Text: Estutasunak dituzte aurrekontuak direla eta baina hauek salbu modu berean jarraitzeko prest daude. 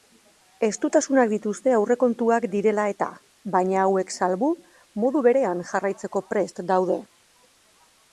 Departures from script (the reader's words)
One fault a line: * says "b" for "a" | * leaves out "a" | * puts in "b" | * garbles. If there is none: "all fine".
all fine